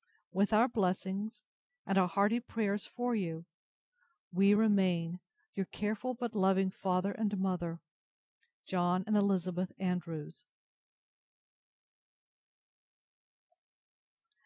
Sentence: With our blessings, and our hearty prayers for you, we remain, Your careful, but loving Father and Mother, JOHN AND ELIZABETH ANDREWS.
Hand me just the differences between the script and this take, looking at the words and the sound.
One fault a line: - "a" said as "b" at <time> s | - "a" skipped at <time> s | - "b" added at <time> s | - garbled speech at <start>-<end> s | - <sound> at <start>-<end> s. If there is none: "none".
none